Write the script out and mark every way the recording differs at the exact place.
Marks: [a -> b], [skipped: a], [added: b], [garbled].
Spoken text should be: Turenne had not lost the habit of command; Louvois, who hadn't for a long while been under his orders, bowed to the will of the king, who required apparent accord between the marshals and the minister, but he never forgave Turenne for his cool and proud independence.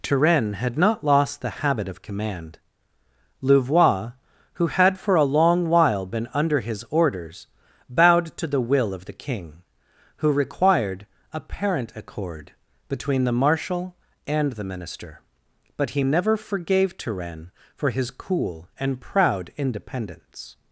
Turenne had not lost the habit of command; Louvois, who [hadn't -> had] for a long while been under his orders, bowed to the will of the king, who required apparent accord between the [marshals -> marshal] and the minister, but he never forgave Turenne for his cool and proud independence.